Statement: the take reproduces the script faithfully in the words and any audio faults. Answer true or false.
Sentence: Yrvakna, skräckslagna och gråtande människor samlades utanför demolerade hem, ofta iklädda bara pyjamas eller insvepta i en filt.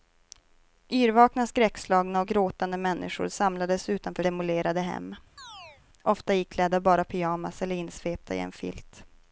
false